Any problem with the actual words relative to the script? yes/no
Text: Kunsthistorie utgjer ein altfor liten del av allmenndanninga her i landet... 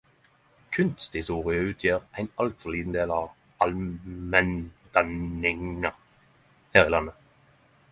no